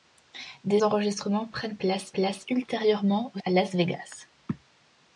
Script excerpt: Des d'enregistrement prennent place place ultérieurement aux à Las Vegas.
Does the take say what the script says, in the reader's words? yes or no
yes